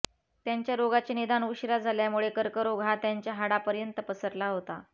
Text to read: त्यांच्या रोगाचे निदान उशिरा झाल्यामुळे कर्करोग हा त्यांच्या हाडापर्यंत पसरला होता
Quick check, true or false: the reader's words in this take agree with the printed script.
true